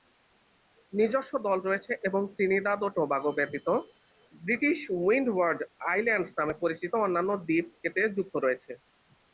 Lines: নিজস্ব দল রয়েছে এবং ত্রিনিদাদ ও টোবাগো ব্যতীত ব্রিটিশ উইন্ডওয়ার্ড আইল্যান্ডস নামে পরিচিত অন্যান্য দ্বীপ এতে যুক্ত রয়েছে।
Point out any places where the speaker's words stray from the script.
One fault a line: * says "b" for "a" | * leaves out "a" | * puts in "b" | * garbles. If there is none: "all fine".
all fine